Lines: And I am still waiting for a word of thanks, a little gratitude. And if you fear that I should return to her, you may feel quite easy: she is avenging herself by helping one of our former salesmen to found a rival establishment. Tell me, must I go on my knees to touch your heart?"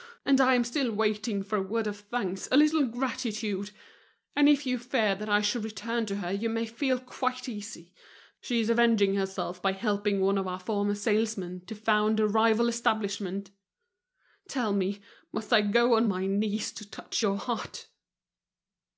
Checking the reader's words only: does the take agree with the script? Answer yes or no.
yes